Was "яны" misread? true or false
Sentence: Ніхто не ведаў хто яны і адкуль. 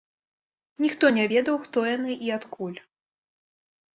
false